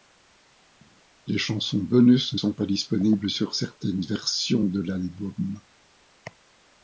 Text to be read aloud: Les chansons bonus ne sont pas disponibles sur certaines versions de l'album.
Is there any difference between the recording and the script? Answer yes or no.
no